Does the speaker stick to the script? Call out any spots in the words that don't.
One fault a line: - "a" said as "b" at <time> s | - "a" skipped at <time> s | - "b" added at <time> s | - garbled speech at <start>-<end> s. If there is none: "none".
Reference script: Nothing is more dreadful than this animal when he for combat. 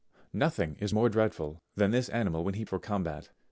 none